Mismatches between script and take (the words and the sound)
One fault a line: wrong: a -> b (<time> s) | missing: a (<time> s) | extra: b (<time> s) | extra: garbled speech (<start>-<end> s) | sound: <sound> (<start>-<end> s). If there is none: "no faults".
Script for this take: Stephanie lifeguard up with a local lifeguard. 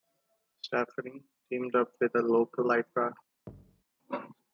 wrong: lifeguard -> teamed (1.5 s)
sound: thud (3.5-3.8 s)